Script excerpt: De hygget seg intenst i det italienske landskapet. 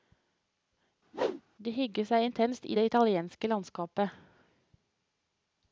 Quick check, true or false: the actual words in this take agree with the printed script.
true